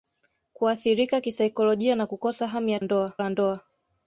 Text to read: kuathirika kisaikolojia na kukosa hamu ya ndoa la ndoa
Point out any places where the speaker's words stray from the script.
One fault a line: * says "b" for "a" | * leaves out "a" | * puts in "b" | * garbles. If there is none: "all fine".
all fine